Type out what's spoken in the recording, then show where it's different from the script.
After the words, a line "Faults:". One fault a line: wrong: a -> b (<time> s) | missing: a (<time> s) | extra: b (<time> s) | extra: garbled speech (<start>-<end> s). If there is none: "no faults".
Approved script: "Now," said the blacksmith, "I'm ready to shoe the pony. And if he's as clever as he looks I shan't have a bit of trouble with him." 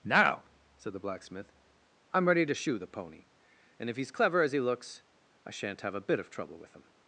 "Now," said the blacksmith, "I'm ready to shoe the pony. And if he's clever as he looks I shan't have a bit of trouble with him."
Faults:
missing: as (4.1 s)